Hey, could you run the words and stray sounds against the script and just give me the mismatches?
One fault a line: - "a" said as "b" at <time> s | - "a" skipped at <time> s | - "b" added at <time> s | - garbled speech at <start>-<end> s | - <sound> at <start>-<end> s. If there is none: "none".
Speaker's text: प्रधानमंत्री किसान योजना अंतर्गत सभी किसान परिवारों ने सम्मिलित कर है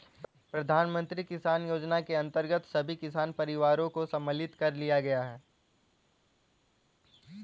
- "के" added at 2.0 s
- "ने" said as "को" at 3.9 s
- "लिया गया" added at 4.7 s